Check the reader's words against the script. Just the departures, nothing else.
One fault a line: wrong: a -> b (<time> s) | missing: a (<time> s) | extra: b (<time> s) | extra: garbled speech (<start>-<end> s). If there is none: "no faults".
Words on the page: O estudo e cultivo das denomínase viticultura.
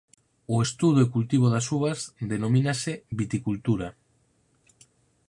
extra: uvas (1.8 s)